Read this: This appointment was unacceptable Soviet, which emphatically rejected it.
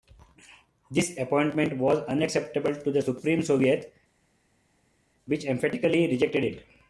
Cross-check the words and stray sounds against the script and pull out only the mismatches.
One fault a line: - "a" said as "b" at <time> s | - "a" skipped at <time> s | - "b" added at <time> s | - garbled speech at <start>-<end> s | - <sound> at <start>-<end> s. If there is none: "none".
- "to the Supreme" added at 2.7 s